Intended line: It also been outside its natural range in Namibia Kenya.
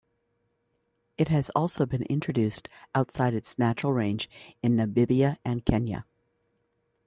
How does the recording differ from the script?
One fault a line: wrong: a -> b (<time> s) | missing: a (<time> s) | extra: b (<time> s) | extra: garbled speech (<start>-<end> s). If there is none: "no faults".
extra: has (1.3 s)
extra: introduced (2.0 s)
extra: and (5.5 s)